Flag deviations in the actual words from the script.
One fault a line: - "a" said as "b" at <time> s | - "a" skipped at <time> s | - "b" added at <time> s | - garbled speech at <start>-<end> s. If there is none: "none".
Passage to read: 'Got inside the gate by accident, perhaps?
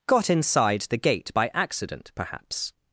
none